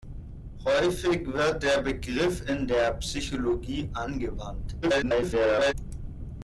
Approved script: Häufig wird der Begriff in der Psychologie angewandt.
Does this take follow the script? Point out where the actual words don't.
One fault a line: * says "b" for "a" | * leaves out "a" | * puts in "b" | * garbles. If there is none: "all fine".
* garbles